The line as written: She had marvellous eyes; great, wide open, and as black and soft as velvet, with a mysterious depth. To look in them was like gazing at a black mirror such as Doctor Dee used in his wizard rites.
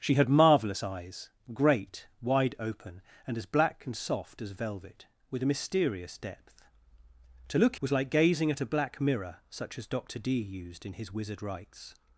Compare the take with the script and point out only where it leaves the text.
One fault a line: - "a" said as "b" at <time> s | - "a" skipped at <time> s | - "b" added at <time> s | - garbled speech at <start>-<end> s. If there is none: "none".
- "in them" skipped at 7.8 s